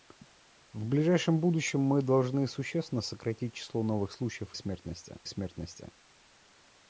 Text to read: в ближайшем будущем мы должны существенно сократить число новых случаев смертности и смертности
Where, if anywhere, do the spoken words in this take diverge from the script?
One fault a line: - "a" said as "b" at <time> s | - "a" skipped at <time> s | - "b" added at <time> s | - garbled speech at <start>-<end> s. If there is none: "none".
none